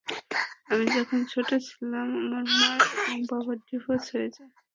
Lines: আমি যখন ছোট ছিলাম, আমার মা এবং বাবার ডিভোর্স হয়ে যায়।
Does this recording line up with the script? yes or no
yes